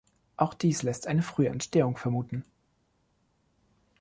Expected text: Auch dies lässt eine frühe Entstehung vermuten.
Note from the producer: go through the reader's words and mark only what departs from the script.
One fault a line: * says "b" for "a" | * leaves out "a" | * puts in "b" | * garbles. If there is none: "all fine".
all fine